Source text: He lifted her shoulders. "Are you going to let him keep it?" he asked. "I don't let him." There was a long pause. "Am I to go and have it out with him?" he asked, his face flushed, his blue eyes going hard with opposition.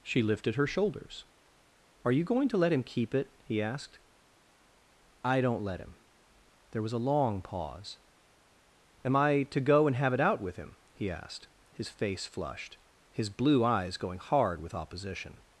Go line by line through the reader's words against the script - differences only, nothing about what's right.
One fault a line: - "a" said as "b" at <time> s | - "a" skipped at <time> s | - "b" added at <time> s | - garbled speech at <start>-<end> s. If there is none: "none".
- "He" said as "She" at 0.0 s